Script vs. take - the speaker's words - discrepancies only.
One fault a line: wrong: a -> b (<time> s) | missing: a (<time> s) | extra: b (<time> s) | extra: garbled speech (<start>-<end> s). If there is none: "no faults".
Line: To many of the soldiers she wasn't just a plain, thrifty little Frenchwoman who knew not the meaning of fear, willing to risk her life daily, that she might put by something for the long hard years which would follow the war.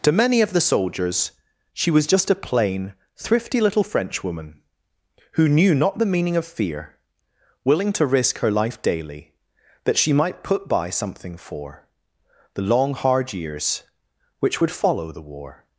wrong: wasn't -> was (1.9 s)